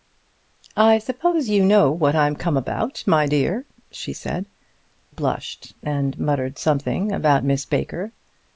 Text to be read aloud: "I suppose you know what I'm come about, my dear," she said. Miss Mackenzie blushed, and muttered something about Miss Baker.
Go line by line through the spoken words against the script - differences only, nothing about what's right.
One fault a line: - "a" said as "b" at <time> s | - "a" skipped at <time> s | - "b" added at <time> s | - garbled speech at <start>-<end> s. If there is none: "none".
- "Miss Mackenzie" skipped at 4.5 s